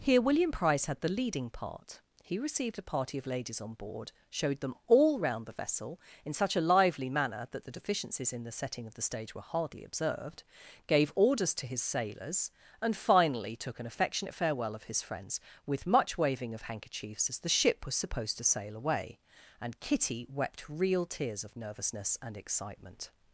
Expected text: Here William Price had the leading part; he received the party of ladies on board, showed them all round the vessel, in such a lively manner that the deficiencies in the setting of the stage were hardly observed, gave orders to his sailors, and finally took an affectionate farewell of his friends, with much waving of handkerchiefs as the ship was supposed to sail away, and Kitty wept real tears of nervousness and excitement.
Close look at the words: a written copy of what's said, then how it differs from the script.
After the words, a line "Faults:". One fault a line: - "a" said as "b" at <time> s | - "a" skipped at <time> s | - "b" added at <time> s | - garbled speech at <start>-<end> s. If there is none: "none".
Here William Price had the leading part; he received a party of ladies on board, showed them all round the vessel, in such a lively manner that the deficiencies in the setting of the stage were hardly observed, gave orders to his sailors, and finally took an affectionate farewell of his friends, with much waving of handkerchiefs as the ship was supposed to sail away, and Kitty wept real tears of nervousness and excitement.
Faults:
- "the" said as "a" at 2.8 s